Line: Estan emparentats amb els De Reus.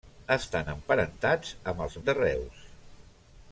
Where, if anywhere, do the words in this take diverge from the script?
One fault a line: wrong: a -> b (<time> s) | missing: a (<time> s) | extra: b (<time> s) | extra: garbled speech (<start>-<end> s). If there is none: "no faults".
no faults